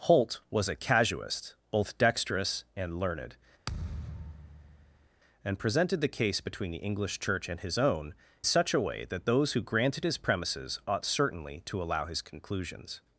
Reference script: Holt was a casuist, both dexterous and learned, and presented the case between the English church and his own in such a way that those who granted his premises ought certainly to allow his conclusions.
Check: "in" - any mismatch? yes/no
yes